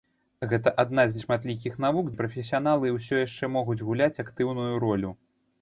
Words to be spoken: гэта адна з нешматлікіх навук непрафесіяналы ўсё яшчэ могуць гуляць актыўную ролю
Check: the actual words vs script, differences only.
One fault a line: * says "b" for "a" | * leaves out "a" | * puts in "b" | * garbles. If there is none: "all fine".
all fine